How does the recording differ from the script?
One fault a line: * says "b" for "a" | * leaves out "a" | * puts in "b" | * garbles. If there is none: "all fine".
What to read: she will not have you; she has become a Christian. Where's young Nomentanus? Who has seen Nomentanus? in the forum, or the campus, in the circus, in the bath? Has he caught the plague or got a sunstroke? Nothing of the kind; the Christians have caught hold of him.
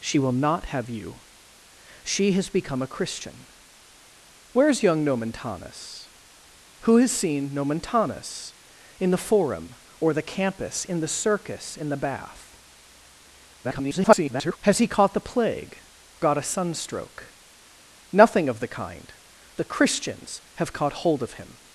* garbles
* leaves out "or"